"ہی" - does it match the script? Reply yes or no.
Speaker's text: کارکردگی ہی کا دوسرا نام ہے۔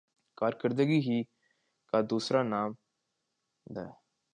yes